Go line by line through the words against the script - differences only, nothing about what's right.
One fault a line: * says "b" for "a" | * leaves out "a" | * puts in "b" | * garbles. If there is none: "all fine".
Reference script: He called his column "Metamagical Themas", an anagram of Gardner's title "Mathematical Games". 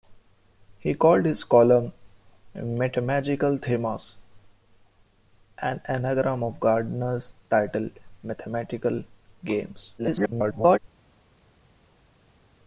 * garbles